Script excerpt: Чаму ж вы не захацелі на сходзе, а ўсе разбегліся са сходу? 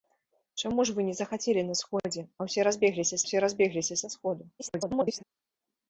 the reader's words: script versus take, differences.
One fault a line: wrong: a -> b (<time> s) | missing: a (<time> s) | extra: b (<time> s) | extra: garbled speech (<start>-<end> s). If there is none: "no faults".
extra: ўсе разбегліся (3.3 s)
extra: garbled speech (4.6-5.2 s)